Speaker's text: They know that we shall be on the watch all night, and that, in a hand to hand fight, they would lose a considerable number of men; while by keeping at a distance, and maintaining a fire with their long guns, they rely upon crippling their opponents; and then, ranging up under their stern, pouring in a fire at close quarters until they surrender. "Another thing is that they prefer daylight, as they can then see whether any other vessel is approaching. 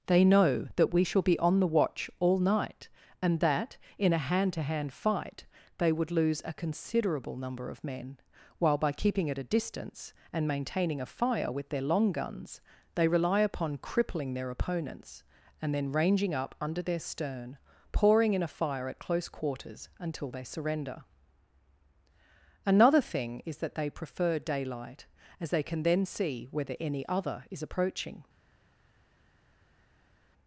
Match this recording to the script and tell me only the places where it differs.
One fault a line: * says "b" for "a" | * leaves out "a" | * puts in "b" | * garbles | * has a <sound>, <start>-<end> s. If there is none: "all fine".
* leaves out "vessel"